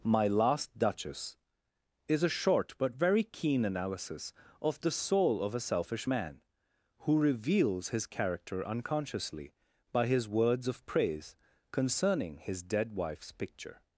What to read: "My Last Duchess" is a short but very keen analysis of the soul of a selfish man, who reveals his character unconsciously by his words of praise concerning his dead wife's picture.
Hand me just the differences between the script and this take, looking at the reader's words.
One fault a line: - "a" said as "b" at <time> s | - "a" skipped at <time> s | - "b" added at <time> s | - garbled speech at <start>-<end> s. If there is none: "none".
none